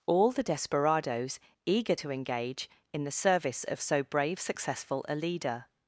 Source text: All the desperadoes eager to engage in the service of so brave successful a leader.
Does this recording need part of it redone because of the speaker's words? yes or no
no